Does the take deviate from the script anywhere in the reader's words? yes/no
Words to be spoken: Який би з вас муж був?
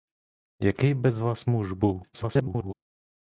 yes